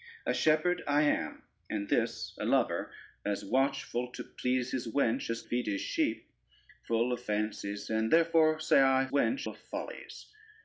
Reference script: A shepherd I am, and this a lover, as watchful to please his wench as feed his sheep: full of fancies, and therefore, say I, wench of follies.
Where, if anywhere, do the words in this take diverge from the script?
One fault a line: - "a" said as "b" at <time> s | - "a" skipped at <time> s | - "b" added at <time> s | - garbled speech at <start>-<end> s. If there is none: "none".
none